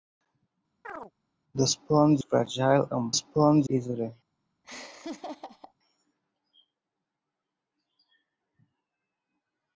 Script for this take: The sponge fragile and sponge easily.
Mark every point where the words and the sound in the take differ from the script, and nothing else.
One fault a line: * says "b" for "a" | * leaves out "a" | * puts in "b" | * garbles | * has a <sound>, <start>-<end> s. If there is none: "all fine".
* has a chirp, 0.8-1.1 s
* has a laugh, 4.6-5.7 s